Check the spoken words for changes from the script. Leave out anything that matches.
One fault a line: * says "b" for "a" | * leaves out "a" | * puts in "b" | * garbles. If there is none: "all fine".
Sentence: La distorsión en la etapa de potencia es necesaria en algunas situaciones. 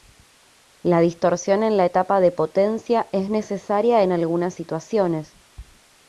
all fine